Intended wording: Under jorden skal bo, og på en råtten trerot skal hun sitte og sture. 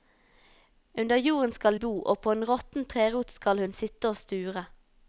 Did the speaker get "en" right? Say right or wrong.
right